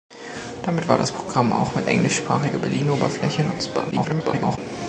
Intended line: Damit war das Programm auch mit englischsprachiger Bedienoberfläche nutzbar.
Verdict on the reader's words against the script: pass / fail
fail